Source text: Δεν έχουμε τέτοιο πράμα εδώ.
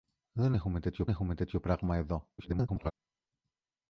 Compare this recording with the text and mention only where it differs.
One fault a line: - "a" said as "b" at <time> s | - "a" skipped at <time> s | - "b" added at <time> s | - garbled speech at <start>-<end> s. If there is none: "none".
- "έχουμε τέτοιο" added at 1.1 s
- garbled speech at 2.4-2.9 s